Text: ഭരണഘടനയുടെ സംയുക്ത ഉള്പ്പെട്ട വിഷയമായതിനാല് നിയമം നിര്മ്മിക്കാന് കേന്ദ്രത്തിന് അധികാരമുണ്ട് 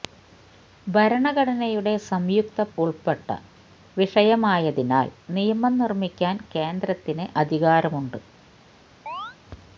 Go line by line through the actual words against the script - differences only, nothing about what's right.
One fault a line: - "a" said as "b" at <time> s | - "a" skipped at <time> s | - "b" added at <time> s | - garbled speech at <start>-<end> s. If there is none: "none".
none